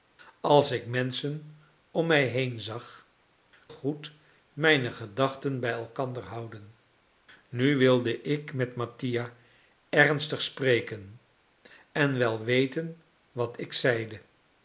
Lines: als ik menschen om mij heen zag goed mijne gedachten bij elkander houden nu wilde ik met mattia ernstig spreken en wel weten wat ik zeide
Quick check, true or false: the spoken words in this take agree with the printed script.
true